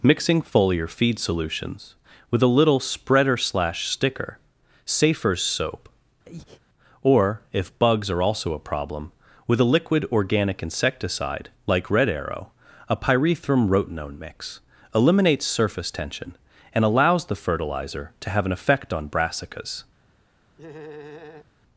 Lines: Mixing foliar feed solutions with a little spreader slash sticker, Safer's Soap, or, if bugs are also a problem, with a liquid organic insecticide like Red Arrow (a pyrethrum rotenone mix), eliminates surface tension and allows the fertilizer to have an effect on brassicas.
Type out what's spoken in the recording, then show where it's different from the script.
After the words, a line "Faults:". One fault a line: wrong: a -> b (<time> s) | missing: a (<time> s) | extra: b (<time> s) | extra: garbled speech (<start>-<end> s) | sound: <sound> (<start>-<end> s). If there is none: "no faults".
Mixing foliar feed solutions with a little spreader slash sticker, Safer's Soap, or, if bugs are also a problem, with a liquid organic insecticide like Red Arrow (a pyrethrum rotenone mix), eliminates surface tension and allows the fertilizer to have an effect on brassicas.
Faults:
sound: breath (6.2-6.6 s)
sound: laugh (20.6-21.5 s)